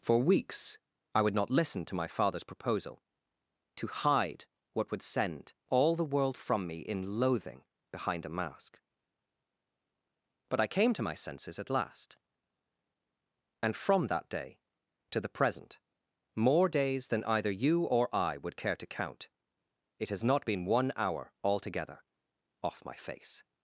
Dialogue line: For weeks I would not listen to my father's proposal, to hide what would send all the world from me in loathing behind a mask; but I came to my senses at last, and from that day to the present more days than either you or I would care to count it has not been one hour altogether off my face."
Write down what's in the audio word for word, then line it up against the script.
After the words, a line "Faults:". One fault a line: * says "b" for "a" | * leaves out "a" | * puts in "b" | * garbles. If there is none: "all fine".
For weeks I would not listen to my father's proposal, to hide what would send all the world from me in loathing behind a mask; but I came to my senses at last, and from that day to the present more days than either you or I would care to count it has not been one hour altogether off my face."
Faults:
all fine